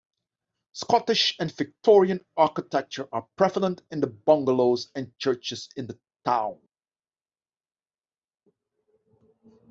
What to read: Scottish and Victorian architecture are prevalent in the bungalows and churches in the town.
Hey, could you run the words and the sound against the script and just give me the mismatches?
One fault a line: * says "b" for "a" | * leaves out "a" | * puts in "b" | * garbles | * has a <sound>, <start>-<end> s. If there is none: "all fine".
all fine